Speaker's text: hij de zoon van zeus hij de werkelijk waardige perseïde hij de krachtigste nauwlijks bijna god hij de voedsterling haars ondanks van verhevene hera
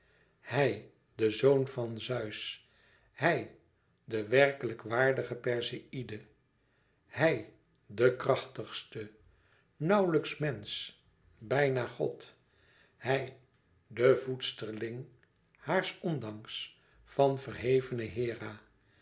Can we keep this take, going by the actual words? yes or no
no